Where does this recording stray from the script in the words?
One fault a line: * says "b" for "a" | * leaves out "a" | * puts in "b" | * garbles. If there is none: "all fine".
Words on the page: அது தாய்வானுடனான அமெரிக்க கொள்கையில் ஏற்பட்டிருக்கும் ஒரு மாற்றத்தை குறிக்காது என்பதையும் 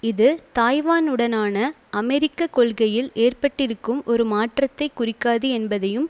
* says "இது" for "அது"